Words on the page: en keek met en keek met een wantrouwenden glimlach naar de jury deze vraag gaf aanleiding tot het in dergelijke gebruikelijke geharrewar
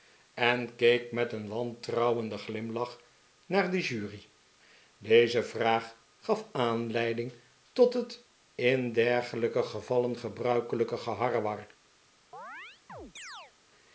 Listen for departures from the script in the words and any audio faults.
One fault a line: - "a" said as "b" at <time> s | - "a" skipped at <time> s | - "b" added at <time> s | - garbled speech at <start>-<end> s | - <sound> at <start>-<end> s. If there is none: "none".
- "en keek met" skipped at 1.3 s
- "gevallen" added at 9.6 s
- chirp at 12.3-13.5 s